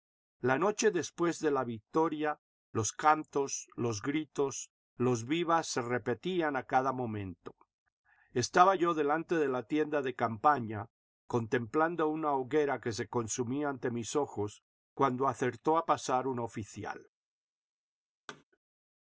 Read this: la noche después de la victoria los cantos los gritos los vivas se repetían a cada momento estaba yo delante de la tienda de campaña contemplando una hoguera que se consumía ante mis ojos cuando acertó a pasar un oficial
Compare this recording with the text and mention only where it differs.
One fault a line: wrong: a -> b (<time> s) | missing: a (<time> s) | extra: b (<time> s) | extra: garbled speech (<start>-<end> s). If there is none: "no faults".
no faults